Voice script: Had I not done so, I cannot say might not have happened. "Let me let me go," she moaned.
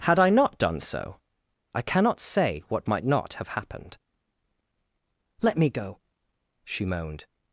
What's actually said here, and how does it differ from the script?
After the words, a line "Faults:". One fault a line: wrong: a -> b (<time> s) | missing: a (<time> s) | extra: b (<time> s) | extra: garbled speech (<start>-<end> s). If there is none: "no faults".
Had I not done so, I cannot say what might not have happened. "Let me go," she moaned.
Faults:
extra: what (2.7 s)
missing: let me (5.7 s)